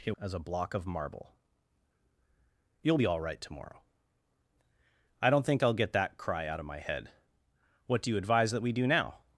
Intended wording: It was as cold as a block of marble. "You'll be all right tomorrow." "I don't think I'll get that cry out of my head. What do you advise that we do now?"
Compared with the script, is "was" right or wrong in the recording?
wrong